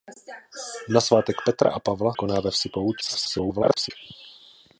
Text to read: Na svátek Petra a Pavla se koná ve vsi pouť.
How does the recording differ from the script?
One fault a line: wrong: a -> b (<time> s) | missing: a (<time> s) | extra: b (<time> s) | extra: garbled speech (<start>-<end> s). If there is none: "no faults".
missing: se (2.1 s)
extra: garbled speech (3.0-3.9 s)